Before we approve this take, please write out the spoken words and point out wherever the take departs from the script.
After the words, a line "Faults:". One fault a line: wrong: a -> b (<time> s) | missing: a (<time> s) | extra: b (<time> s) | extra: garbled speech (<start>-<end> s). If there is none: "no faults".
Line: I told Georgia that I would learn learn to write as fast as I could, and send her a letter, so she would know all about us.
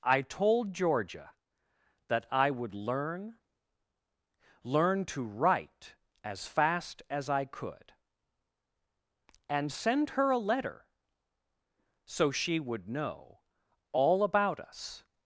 I told Georgia that I would learn learn to write as fast as I could, and send her a letter, so she would know all about us.
Faults:
no faults